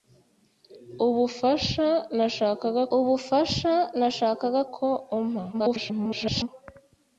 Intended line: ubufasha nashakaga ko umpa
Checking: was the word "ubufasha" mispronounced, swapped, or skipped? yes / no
no